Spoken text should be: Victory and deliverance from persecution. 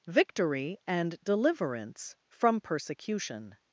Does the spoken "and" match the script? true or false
true